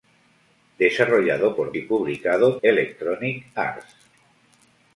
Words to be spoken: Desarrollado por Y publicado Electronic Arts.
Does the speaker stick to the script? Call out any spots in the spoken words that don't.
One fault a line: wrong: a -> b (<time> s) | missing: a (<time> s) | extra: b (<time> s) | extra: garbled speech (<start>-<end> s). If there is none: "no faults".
no faults